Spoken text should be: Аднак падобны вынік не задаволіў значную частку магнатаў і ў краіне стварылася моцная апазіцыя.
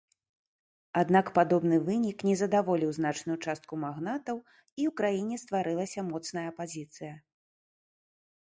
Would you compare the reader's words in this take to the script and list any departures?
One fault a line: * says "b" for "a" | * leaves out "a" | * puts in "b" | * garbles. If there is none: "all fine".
all fine